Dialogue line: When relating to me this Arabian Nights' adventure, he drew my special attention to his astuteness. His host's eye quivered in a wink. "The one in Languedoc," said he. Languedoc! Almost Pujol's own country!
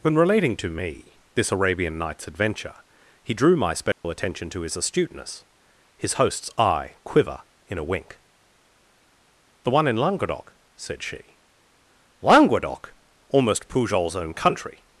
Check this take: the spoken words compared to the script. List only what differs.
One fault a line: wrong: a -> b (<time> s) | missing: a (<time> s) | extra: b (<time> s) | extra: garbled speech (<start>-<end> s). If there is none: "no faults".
wrong: quivered -> quiver (7.0 s)
wrong: he -> she (11.0 s)